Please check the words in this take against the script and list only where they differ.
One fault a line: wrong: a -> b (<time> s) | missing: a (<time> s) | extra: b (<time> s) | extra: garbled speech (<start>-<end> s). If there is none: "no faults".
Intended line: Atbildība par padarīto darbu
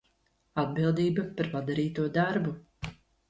no faults